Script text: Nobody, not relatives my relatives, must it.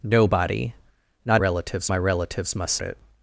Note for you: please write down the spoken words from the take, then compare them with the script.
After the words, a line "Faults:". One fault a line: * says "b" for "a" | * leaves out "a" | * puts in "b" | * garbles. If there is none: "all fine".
Nobody, not relatives my relatives, must it.
Faults:
all fine